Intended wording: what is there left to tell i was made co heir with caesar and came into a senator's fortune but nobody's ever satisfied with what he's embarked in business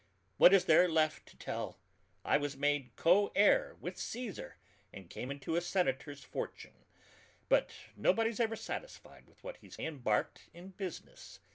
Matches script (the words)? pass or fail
pass